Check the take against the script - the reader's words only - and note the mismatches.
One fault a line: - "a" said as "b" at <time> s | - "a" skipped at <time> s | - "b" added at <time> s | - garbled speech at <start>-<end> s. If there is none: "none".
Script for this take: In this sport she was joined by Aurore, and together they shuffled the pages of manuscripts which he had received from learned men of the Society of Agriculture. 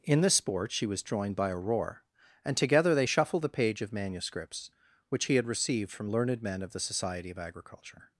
- "pages" said as "page" at 3.5 s